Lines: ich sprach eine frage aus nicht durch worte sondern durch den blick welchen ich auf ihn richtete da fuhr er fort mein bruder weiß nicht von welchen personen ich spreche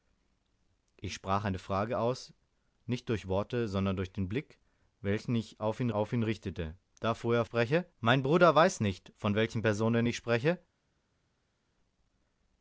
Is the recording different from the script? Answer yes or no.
yes